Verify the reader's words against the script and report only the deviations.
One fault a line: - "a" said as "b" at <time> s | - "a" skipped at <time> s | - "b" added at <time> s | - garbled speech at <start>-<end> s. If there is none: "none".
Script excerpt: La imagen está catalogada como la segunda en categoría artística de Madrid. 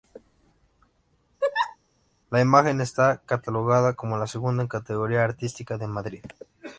none